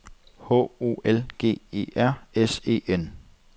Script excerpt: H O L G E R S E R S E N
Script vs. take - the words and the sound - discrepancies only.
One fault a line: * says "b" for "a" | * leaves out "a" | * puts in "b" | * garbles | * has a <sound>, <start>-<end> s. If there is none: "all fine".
* leaves out "R S E"